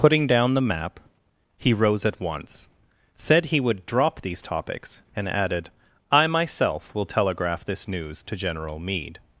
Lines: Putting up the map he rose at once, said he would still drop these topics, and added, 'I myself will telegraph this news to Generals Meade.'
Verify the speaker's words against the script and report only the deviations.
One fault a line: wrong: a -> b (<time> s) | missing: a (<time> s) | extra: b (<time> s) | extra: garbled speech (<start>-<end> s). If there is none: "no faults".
wrong: up -> down (0.2 s)
missing: still (3.9 s)
wrong: Generals -> General (8.3 s)